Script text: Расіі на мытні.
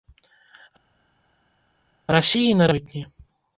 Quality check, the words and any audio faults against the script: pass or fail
pass